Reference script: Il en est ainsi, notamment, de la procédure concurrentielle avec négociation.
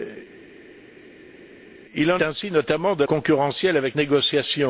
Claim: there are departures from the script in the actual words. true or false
true